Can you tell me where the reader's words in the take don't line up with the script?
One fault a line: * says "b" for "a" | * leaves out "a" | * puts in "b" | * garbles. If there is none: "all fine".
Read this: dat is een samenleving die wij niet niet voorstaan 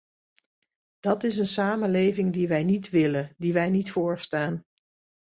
* puts in "willen die wij"